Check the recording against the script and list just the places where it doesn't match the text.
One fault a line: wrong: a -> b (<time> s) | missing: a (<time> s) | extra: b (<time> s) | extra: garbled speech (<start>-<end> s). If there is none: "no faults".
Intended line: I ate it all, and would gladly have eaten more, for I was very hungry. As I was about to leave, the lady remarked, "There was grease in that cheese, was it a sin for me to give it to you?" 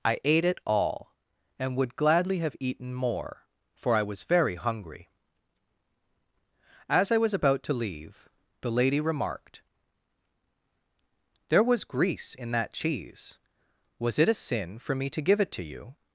no faults